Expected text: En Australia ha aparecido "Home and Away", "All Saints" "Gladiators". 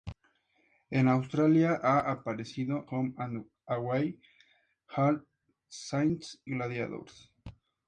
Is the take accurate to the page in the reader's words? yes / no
yes